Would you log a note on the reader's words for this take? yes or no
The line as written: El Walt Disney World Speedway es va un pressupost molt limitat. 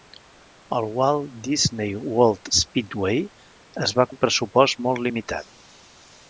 no